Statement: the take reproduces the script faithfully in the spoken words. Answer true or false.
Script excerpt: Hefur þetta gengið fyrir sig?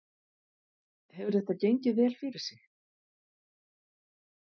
false